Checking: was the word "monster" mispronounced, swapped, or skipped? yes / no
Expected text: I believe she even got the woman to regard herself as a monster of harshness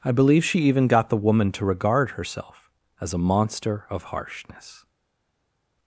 no